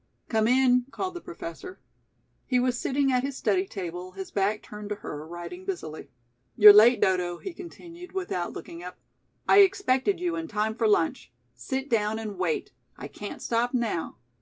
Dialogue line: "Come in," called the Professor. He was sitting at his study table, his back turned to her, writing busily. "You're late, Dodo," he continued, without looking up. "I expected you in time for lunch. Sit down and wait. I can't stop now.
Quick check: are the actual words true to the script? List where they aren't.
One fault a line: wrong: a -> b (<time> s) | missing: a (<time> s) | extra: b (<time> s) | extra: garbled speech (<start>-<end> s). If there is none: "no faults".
no faults